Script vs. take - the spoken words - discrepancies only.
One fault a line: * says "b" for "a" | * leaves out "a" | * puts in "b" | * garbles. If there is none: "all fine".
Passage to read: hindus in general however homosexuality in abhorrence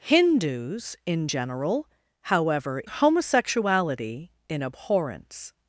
all fine